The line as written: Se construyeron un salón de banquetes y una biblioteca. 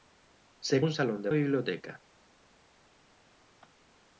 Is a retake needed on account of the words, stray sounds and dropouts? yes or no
yes